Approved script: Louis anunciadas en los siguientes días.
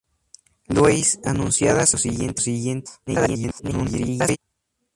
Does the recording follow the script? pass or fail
fail